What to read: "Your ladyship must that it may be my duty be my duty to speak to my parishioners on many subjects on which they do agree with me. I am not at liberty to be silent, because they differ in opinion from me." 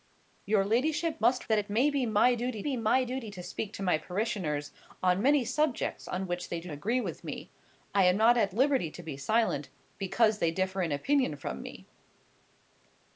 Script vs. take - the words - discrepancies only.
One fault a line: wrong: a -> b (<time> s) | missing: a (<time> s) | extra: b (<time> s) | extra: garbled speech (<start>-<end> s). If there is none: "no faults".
no faults